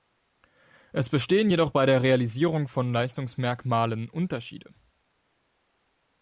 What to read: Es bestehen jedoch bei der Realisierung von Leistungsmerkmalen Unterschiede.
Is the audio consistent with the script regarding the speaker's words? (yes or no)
yes